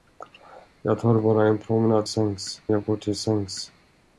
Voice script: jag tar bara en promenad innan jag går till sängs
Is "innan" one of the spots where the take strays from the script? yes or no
yes